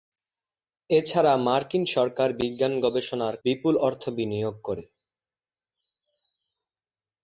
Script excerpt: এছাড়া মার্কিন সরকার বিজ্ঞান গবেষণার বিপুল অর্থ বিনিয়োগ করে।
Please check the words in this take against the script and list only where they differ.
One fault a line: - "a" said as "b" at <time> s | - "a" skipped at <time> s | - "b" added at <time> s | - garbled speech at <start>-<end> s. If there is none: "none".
none